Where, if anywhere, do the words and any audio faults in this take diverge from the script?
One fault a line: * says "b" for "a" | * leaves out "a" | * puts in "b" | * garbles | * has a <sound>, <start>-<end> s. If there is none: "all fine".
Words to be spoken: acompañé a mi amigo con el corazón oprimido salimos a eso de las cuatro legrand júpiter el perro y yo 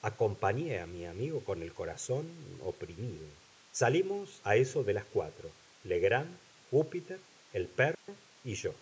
* has a dropout, 7.9-8.1 s